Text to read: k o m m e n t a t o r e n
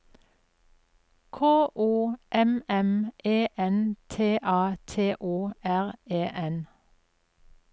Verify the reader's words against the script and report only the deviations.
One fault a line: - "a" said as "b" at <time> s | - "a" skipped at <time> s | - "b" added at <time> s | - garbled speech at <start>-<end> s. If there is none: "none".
none